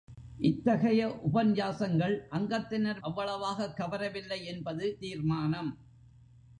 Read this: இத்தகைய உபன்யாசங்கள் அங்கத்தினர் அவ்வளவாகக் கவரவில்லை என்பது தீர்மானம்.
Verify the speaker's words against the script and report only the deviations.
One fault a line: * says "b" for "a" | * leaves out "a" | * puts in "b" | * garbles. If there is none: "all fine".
all fine